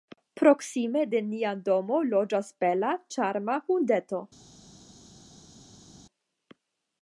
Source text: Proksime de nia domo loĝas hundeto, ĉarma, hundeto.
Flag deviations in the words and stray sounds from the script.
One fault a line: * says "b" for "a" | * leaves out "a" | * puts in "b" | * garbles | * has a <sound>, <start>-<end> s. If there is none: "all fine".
* says "bela" for "hundeto"